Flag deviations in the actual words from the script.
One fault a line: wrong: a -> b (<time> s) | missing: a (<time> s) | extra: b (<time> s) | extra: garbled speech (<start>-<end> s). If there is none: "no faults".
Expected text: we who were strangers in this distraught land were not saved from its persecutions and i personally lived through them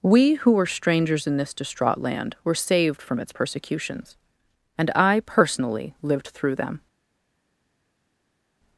missing: not (2.5 s)